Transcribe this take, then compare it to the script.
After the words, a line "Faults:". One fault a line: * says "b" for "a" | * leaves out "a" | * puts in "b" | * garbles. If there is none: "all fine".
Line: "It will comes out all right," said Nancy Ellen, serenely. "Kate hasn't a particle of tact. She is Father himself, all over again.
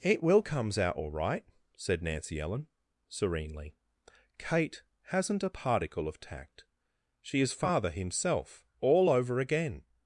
"It will comes out all right," said Nancy Ellen, serenely. "Kate hasn't a particle of tact. She is Father himself, all over again.
Faults:
all fine